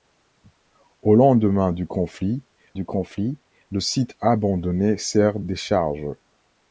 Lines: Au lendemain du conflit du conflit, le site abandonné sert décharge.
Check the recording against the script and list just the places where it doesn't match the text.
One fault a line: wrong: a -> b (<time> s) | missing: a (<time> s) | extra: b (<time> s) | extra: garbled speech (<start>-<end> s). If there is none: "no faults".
no faults